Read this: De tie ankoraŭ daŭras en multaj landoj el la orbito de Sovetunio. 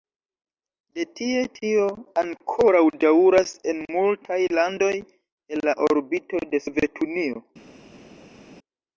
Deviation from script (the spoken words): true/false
true